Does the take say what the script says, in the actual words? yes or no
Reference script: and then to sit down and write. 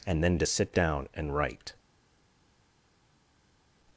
yes